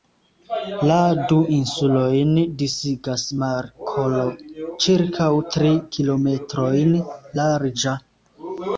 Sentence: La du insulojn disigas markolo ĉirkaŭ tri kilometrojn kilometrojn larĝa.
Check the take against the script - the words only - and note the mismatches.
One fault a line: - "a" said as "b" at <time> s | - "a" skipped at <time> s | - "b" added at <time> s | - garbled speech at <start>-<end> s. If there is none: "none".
- "kilometrojn" skipped at 7.0 s